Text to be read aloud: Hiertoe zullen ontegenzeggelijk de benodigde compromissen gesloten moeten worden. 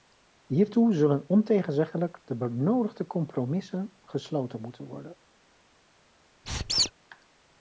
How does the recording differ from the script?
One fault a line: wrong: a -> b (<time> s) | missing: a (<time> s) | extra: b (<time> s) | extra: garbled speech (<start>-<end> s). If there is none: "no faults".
no faults